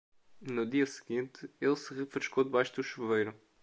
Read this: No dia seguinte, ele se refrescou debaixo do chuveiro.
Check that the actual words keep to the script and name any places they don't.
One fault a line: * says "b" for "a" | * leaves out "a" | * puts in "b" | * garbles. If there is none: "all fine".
all fine